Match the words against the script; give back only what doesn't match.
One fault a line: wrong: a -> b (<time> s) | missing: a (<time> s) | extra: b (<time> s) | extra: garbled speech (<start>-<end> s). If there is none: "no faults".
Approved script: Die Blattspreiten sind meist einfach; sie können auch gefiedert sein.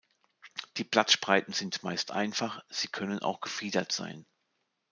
no faults